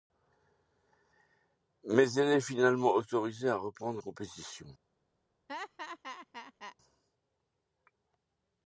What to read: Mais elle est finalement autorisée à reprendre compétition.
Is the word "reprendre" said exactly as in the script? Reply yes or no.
yes